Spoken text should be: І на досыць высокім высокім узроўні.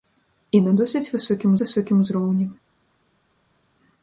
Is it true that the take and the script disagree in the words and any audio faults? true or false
false